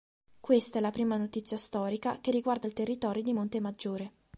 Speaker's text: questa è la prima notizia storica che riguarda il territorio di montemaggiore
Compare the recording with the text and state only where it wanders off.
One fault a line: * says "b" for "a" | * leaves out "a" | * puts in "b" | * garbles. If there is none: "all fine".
all fine